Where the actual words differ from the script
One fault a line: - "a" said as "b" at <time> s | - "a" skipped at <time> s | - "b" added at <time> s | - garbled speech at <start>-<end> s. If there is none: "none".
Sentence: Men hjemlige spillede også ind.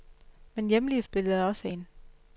none